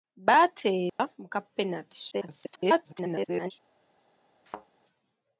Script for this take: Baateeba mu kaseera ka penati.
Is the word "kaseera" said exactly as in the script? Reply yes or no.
no